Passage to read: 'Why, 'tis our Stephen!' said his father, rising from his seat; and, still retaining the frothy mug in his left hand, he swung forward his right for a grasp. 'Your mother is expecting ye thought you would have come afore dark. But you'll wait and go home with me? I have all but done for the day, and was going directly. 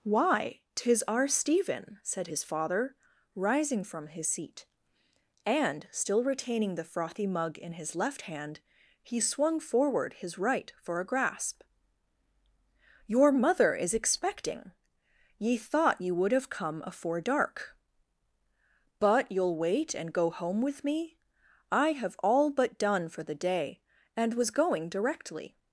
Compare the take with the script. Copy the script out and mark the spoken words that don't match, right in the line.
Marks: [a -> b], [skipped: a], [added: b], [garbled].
'Why, 'tis our Stephen!' said his father, rising from his seat; and, still retaining the frothy mug in his left hand, he swung forward his right for a grasp. 'Your mother is expecting ye thought you would have come afore dark. But you'll wait and go home with me? I have all but done for the day, and was going directly.